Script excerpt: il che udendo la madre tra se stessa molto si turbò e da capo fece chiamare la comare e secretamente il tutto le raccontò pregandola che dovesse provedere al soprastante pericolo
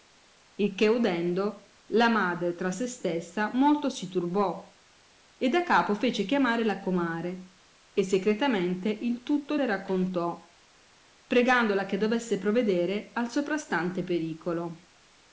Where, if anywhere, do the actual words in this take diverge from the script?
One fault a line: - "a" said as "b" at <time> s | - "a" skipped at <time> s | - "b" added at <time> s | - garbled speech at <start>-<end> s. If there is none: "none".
none